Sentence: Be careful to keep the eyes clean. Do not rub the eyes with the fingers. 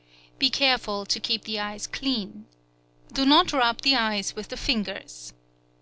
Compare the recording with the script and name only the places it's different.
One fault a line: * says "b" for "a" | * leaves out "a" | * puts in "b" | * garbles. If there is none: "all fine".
all fine